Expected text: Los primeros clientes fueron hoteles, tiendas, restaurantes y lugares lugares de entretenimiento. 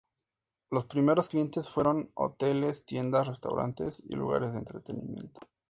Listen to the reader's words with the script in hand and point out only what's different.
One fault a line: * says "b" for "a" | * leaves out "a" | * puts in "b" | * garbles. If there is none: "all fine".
* leaves out "lugares"